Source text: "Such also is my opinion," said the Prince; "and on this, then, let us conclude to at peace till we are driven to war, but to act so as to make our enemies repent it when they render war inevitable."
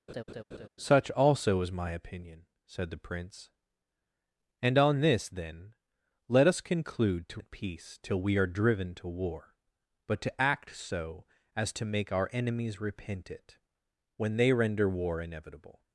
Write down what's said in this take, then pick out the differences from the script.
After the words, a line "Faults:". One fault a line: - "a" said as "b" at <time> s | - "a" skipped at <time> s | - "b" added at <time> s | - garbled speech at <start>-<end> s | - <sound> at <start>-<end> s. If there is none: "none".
"Such also is my opinion," said the Prince; "and on this, then, let us conclude to at peace till we are driven to war, but to act so as to make our enemies repent it when they render war inevitable."
Faults:
- laugh at 0.1-0.7 s